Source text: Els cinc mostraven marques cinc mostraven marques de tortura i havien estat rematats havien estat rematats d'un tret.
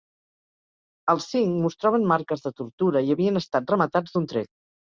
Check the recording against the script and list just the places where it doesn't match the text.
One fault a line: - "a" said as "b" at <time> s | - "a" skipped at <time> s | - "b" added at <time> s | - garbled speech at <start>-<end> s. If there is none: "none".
- "cinc mostraven marques" skipped at 2.4 s
- "havien estat rematats" skipped at 4.2 s